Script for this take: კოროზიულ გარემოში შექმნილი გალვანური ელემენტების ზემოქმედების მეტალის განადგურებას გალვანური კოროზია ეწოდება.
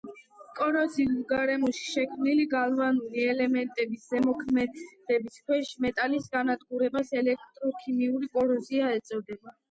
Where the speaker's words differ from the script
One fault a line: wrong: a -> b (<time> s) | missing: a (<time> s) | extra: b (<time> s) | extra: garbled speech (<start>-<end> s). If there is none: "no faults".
extra: ქვეშ (5.5 s)
wrong: გალვანური -> ელექტროქიმიური (7.2 s)